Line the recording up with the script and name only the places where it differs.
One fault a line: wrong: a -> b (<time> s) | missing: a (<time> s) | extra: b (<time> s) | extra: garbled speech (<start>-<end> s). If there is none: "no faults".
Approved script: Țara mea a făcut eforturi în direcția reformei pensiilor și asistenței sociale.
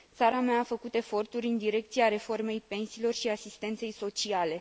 no faults